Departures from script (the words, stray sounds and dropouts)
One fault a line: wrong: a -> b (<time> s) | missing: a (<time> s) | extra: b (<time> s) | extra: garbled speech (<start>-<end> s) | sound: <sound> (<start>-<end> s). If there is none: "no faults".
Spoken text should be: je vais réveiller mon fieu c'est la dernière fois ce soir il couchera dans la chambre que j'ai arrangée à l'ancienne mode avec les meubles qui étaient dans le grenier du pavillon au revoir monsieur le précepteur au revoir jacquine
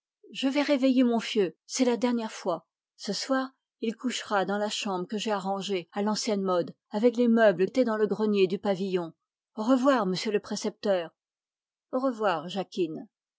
missing: qui (7.7 s)